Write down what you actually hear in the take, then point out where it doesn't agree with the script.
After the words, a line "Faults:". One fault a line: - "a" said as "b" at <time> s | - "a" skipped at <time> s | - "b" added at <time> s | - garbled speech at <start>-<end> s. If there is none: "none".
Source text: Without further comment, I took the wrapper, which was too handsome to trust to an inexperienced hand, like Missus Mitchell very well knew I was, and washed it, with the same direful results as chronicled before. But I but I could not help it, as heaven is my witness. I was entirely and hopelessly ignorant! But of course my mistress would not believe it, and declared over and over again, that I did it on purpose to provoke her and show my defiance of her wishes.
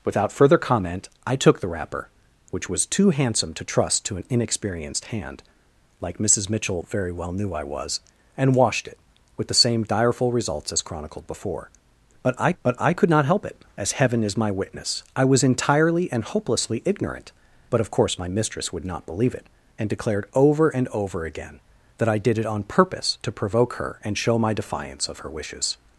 Without further comment, I took the wrapper, which was too handsome to trust to an inexperienced hand, like Missus Mitchell very well knew I was, and washed it, with the same direful results as chronicled before. But I but I could not help it, as heaven is my witness. I was entirely and hopelessly ignorant! But of course my mistress would not believe it, and declared over and over again, that I did it on purpose to provoke her and show my defiance of her wishes.
Faults:
none